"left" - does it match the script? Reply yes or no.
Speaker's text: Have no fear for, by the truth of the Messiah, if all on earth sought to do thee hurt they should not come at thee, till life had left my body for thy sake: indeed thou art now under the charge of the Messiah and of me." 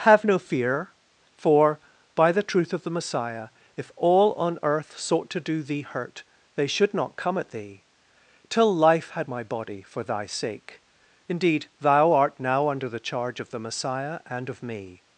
no